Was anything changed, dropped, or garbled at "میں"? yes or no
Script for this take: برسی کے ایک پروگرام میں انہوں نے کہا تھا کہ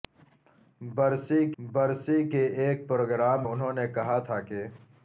yes